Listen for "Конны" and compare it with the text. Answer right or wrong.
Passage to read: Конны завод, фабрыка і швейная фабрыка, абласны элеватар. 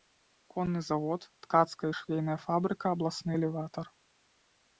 right